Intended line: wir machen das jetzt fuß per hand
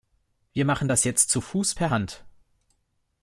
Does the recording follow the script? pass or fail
fail